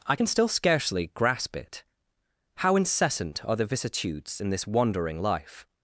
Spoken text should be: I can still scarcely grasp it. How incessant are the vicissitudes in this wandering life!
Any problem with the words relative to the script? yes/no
no